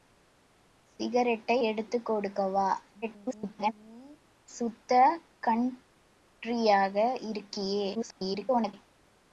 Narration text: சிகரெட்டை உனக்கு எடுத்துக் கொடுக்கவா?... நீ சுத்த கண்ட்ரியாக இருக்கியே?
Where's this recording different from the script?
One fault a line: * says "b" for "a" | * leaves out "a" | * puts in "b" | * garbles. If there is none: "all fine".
* leaves out "உனக்கு"
* garbles
* garbles